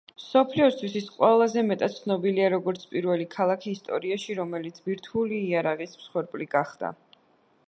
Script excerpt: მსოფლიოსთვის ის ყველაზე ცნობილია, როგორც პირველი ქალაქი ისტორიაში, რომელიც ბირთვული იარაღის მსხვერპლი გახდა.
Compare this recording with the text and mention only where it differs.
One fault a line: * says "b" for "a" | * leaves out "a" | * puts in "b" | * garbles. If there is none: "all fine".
* puts in "მეტად"